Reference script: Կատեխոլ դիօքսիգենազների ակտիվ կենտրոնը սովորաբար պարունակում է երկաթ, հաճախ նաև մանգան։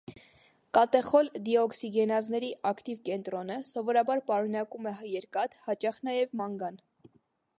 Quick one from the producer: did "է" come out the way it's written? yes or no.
yes